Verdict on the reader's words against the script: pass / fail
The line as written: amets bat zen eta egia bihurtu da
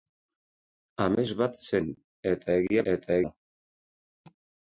fail